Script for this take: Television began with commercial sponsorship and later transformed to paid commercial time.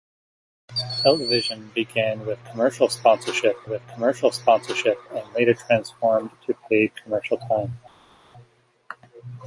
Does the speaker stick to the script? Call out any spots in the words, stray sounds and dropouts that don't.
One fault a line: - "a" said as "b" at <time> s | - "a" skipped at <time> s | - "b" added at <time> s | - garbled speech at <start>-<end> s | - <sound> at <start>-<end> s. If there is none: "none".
- "with commercial sponsorship" added at 3.7 s